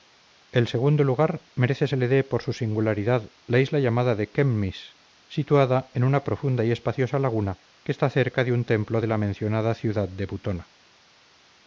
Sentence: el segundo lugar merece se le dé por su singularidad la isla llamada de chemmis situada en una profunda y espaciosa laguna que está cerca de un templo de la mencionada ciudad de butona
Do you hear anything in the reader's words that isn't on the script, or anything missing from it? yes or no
no